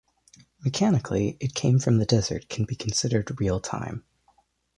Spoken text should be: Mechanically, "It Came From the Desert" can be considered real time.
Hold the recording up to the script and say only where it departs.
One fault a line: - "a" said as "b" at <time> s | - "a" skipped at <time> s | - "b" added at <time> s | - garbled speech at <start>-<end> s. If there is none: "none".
none